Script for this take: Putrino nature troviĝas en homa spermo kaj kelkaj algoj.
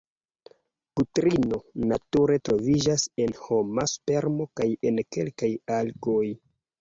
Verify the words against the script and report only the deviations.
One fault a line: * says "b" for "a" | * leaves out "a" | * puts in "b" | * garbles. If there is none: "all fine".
* puts in "en"